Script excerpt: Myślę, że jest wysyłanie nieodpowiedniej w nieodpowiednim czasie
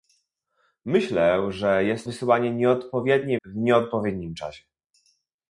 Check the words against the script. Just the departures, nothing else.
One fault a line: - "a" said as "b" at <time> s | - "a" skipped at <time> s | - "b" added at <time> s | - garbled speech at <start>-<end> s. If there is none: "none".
none